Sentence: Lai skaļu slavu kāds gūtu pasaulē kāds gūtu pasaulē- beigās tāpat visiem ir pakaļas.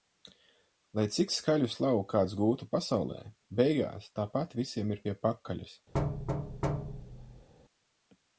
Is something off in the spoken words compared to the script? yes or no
yes